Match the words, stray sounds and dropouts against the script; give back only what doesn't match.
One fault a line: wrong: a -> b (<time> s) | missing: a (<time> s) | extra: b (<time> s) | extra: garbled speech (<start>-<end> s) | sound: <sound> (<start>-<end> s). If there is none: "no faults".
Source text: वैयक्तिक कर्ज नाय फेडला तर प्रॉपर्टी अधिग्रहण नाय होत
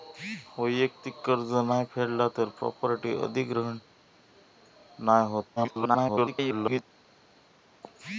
extra: garbled speech (5.6-6.8 s)